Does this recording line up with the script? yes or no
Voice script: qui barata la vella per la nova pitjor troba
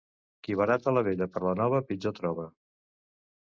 yes